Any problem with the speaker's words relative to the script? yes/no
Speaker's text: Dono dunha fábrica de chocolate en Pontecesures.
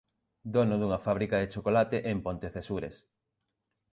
no